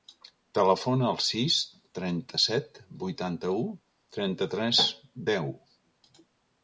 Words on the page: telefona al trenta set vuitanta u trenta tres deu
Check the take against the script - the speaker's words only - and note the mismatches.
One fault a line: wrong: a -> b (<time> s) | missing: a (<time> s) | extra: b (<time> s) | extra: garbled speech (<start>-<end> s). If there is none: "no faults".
extra: sis (1.2 s)